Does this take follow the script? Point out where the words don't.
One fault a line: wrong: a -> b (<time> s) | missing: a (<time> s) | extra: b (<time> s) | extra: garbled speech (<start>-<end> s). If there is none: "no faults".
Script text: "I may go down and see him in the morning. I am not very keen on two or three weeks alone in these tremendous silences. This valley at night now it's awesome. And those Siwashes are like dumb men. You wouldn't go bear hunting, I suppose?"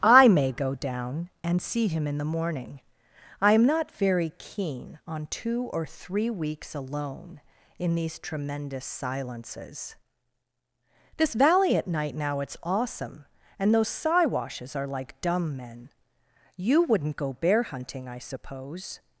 no faults